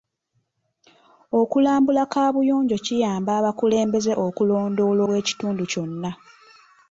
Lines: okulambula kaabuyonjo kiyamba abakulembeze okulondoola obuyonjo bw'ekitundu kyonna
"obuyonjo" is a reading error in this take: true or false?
true